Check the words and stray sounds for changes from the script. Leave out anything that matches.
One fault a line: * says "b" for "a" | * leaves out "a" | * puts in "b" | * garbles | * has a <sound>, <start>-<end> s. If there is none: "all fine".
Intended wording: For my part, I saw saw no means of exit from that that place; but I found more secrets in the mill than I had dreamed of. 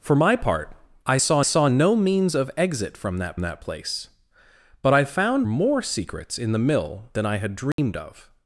* has a dropout, 7.7-7.8 s